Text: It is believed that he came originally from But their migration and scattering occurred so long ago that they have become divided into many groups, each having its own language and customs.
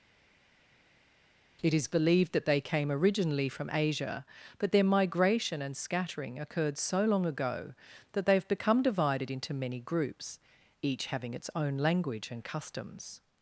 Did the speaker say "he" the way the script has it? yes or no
no